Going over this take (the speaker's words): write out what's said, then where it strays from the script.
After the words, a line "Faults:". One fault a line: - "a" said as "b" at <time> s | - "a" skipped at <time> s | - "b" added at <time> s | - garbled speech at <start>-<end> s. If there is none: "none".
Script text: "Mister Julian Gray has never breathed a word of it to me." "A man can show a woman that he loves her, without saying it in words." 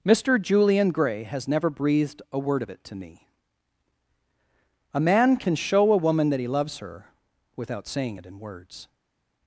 "Mister Julian Gray has never breathed a word of it to me." "A man can show a woman that he loves her, without saying it in words."
Faults:
none